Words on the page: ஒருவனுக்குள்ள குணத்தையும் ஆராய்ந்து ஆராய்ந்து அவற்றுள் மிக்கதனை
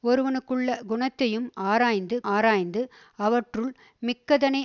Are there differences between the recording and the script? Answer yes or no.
no